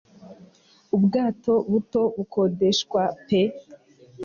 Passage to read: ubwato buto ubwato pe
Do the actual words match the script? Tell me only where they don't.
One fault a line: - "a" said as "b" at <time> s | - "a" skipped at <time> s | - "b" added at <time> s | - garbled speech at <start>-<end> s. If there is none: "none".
- "ubwato" said as "bukodeshwa" at 2.1 s